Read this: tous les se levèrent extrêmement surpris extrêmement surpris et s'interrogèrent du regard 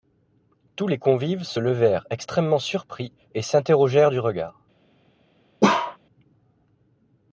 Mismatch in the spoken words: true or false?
true